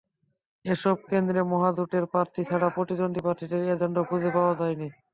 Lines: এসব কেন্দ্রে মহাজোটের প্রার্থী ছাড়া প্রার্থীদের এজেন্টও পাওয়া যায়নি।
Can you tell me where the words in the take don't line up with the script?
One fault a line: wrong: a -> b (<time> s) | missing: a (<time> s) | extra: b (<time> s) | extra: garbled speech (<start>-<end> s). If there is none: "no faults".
extra: প্রতিদ্বন্দ্বী (2.8 s)
extra: খুঁজে (4.1 s)